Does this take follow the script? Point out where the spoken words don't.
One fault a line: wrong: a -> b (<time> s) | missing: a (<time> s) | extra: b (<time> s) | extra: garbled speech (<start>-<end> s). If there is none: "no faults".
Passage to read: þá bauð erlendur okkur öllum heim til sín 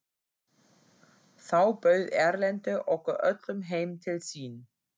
no faults